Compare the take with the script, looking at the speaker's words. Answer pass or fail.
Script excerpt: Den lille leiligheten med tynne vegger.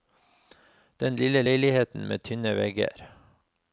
pass